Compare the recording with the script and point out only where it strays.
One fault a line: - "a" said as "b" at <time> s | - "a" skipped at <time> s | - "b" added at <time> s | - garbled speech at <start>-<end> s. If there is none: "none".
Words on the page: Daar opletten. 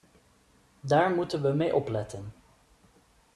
- "moeten we mee" added at 1.1 s